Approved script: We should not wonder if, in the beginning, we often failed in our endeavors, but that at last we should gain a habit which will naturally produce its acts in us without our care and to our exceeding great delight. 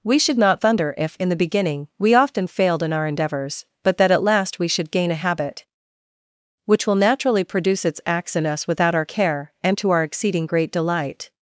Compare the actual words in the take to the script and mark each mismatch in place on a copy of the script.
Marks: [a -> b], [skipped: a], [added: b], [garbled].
We should not [wonder -> thunder] if, in the beginning, we often failed in our endeavors, but that at last we should gain a habit which will naturally produce its acts in us without our care and to our exceeding great delight.